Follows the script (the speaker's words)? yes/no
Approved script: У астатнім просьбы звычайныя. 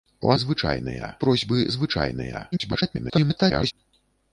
no